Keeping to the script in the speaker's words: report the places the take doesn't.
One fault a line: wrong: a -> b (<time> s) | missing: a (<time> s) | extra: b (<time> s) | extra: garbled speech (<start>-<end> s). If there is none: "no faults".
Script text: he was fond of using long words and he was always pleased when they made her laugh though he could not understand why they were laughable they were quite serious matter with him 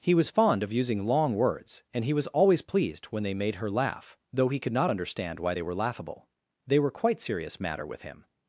no faults